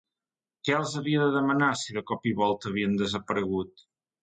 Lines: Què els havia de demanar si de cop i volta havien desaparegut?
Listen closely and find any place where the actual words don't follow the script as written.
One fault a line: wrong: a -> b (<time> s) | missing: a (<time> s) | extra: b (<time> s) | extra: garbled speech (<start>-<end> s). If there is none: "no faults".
no faults